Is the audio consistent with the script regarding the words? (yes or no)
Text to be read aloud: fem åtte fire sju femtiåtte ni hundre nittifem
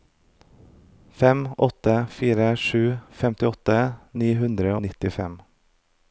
yes